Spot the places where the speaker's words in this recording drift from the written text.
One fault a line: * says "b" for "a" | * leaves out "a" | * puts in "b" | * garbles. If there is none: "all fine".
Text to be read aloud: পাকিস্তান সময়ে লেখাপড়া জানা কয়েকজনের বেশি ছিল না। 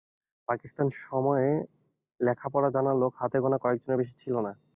* puts in "লোক হাতে গোনা"